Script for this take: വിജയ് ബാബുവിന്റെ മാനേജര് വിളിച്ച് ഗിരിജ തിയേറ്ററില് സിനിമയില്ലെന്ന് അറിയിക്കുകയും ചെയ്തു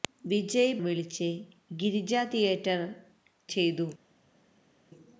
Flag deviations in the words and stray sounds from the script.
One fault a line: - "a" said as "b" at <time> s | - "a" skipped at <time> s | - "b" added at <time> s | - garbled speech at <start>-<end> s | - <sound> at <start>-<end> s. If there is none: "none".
- "ബാബുവിന്റെ മാനേജര്" skipped at 0.8 s
- "സിനിമയില്ലെന്ന് അറിയിക്കുകയും" skipped at 2.9 s